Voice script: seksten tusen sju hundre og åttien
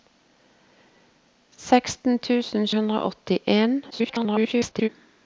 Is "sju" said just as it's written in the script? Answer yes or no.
no